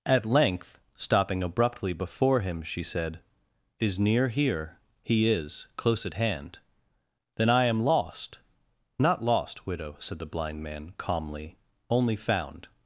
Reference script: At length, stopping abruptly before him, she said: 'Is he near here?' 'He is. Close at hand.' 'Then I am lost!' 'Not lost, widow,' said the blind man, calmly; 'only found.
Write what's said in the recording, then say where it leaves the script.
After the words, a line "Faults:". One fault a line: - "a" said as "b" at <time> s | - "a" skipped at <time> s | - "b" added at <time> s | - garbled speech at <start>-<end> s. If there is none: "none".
At length, stopping abruptly before him, she said: 'Is near here?' 'He is. Close at hand.' 'Then I am lost!' 'Not lost, widow,' said the blind man, calmly; 'only found.
Faults:
- "he" skipped at 4.0 s